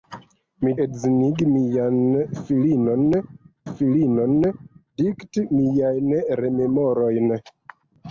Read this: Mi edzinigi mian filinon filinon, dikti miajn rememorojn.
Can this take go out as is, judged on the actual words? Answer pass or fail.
pass